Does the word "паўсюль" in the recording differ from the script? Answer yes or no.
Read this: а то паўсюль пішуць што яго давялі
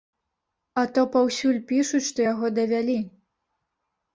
no